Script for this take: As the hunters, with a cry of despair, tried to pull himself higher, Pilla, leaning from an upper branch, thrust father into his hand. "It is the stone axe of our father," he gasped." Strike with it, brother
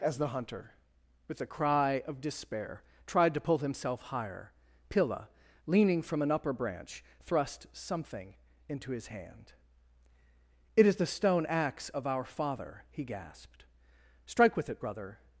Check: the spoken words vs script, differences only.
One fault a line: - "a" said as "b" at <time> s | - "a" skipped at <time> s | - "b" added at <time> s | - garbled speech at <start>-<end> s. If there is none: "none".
- "hunters" said as "hunter" at 0.3 s
- "father" said as "something" at 7.7 s